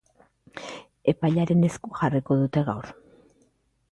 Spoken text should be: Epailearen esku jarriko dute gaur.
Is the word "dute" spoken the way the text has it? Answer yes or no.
yes